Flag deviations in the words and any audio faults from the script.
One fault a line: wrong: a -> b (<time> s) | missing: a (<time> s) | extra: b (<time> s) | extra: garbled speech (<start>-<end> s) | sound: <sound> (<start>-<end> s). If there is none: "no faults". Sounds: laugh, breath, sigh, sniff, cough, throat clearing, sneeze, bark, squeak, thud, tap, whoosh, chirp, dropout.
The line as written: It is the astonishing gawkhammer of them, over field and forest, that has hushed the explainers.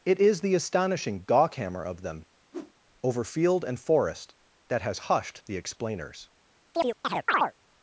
sound: whoosh (2.5-2.7 s)
sound: chirp (6.7-7.5 s)